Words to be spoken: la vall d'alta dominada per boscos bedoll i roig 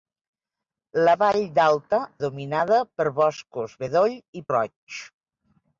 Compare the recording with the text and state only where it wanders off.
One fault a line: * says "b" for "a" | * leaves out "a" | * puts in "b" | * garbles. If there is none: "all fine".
all fine